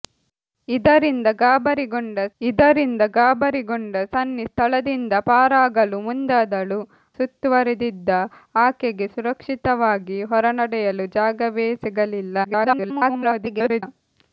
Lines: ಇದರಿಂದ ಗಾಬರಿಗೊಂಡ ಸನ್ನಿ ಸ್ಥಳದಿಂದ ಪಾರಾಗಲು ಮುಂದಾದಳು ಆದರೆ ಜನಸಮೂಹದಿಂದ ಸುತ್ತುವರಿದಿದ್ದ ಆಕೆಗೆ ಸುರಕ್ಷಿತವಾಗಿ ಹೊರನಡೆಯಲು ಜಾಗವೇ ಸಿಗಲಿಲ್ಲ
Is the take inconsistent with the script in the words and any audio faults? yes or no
yes